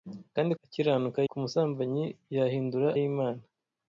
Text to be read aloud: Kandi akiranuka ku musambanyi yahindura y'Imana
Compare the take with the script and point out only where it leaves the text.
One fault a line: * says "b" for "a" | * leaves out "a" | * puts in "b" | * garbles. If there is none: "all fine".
all fine